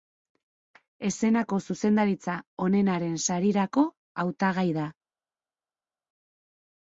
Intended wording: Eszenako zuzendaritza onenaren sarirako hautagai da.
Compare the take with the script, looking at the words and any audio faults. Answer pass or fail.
pass